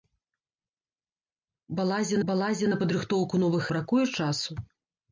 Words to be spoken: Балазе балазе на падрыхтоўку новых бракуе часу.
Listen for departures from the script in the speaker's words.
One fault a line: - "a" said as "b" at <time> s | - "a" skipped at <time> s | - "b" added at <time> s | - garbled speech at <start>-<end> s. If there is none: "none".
none